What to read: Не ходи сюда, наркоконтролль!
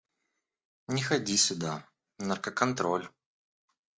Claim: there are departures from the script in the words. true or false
false